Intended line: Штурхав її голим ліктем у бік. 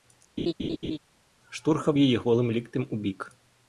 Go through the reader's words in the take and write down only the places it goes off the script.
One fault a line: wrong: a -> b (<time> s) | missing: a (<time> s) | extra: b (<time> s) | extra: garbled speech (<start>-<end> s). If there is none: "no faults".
no faults